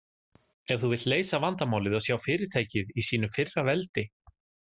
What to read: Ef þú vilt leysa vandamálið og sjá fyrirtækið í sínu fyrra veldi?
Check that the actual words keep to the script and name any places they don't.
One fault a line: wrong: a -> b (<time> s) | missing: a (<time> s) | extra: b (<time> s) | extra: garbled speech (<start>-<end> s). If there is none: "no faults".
no faults